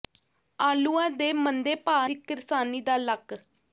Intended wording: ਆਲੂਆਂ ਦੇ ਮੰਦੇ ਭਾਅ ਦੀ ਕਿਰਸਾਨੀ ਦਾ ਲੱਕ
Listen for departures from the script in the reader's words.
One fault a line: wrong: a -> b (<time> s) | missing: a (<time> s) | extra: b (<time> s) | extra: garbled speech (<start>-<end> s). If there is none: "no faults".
no faults